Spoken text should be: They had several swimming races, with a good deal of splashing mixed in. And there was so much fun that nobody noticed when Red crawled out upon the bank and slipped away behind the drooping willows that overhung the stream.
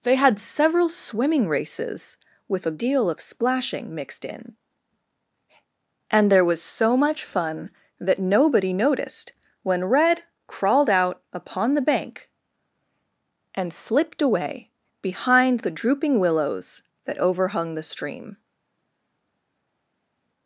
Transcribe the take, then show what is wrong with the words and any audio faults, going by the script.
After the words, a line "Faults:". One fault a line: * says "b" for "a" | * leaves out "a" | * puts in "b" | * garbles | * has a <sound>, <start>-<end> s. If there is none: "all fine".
They had several swimming races, with a deal of splashing mixed in. And there was so much fun that nobody noticed when Red crawled out upon the bank and slipped away behind the drooping willows that overhung the stream.
Faults:
* leaves out "good"